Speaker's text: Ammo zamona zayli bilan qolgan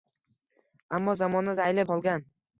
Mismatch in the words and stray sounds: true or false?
true